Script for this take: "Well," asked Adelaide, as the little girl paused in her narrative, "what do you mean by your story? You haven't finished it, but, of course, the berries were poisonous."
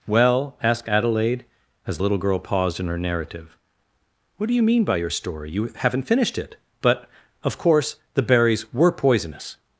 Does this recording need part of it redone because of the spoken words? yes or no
no